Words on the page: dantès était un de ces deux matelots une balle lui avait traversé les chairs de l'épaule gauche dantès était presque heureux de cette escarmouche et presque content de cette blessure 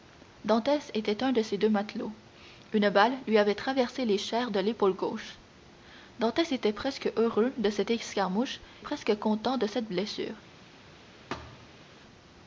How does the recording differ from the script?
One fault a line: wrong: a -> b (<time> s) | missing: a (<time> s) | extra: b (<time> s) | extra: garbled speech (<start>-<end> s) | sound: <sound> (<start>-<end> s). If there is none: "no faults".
missing: et (8.6 s)
sound: thud (11.3-11.8 s)